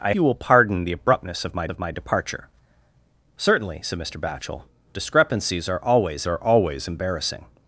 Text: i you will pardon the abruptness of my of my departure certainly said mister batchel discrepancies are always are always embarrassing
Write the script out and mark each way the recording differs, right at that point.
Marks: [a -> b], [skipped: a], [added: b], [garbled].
i you will pardon the abruptness of my of my departure certainly said mister batchel discrepancies are always are always embarrassing